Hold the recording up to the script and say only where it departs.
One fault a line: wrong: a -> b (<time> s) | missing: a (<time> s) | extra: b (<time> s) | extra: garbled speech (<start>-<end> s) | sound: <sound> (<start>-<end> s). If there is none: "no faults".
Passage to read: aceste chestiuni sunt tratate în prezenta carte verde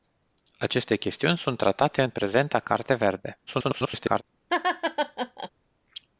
extra: garbled speech (3.5-4.2 s)
sound: laugh (4.5-5.5 s)